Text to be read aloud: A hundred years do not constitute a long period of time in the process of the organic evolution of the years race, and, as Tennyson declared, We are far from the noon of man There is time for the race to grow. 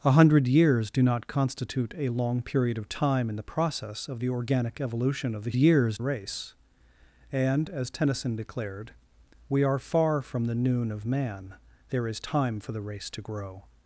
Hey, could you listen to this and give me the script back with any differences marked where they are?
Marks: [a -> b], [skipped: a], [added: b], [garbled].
A hundred years do not constitute a long period of time in the process of the organic evolution of the years race, and, as Tennyson declared, We are far from the noon of man There is time for the race to grow.